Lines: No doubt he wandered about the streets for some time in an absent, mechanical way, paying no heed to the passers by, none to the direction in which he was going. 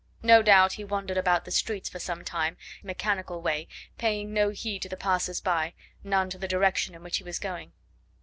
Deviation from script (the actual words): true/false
true